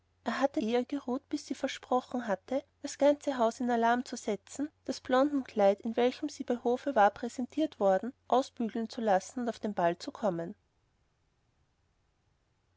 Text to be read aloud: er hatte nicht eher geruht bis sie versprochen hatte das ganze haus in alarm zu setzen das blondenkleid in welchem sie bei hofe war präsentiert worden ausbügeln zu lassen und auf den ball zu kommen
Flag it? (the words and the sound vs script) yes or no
yes